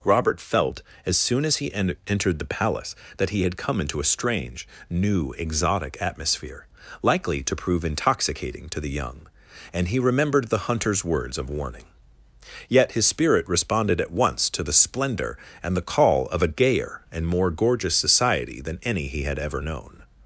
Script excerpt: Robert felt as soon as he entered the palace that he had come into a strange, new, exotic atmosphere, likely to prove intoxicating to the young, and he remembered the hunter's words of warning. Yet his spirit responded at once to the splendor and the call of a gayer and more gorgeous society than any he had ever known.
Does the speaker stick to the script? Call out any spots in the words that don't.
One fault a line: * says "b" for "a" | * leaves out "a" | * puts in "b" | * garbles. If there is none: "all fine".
* puts in "en"